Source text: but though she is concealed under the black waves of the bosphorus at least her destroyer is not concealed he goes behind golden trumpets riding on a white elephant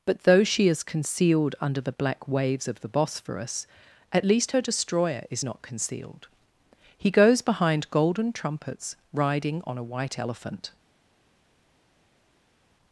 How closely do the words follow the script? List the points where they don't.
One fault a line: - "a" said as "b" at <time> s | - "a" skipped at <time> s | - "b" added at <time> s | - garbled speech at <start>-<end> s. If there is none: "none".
none